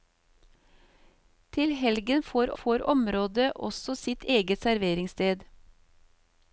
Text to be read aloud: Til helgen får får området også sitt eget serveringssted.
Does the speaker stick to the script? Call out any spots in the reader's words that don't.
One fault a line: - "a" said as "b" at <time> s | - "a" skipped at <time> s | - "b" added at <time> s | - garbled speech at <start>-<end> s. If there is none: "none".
none